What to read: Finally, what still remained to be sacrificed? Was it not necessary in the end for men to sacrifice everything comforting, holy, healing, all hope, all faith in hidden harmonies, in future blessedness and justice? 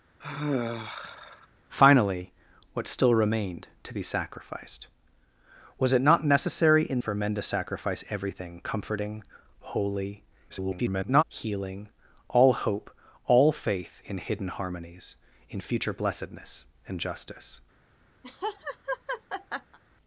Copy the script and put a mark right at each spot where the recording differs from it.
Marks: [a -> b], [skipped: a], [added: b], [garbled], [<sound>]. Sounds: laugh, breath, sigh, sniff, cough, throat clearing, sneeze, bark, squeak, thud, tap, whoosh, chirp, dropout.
[sigh] Finally, what still remained to be sacrificed? Was it not necessary in [skipped: the end] for men to sacrifice everything comforting, holy, [garbled] healing, all hope, all faith in hidden harmonies, in future blessedness and justice? [laugh]